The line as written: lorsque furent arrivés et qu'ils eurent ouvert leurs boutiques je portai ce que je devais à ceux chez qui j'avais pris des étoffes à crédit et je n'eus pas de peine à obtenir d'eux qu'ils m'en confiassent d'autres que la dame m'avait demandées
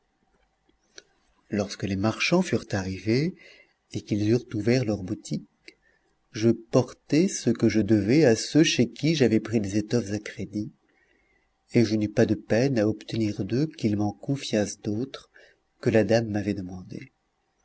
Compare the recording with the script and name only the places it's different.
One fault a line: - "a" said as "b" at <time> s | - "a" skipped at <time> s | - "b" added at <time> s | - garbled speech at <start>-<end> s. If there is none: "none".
- "les marchands" added at 1.8 s